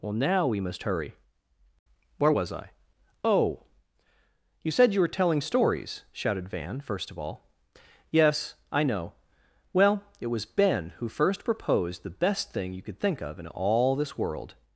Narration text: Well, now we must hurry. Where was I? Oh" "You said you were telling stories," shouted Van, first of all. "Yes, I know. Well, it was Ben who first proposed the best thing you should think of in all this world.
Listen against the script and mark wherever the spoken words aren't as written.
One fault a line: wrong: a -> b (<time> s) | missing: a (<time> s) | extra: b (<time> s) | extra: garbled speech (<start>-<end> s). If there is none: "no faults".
wrong: should -> could (12.8 s)